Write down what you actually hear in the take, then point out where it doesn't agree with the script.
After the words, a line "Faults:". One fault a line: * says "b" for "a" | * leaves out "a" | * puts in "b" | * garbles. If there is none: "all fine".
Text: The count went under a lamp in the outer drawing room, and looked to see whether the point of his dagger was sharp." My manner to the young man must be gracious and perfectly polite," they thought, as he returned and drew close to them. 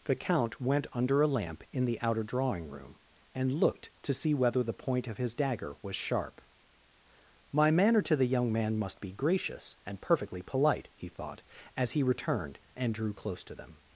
The count went under a lamp in the outer drawing room, and looked to see whether the point of his dagger was sharp." My manner to the young man must be gracious and perfectly polite," he thought, as he returned and drew close to them.
Faults:
* says "he" for "they"